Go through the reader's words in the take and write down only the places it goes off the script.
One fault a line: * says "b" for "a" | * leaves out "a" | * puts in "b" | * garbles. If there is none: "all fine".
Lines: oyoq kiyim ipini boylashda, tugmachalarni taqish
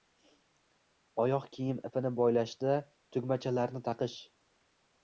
all fine